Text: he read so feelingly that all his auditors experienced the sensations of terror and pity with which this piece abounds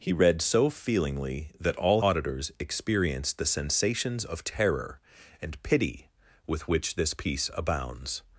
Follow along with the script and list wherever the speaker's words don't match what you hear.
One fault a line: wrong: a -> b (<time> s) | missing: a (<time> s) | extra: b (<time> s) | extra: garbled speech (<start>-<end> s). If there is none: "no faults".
missing: his (2.0 s)